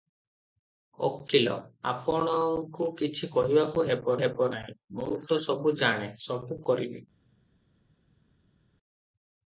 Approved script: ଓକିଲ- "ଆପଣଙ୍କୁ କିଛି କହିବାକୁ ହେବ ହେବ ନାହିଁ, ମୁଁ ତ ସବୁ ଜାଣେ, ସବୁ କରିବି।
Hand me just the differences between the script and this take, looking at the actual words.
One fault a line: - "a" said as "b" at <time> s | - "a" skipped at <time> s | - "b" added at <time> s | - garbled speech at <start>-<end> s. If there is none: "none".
none